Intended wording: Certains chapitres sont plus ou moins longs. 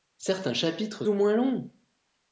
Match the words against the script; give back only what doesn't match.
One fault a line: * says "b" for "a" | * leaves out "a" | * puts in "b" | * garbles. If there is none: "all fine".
* leaves out "sont plus"